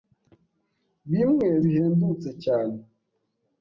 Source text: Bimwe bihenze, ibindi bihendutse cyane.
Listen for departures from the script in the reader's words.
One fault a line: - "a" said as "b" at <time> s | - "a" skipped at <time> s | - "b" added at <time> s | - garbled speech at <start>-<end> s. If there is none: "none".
- "bihenze ibindi" skipped at 1.5 s